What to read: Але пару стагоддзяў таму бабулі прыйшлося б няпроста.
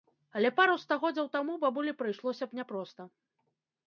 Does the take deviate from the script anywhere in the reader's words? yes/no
no